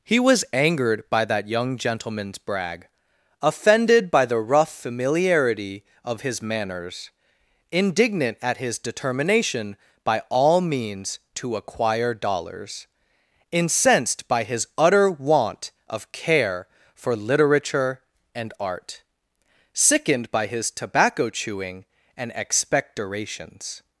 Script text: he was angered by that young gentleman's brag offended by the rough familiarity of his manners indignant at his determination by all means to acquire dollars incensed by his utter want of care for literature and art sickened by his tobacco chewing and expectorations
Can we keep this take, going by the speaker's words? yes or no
yes